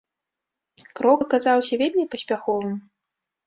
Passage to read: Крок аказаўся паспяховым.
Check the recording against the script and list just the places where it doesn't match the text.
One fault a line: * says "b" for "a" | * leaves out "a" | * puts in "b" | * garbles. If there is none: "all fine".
* puts in "вельмі"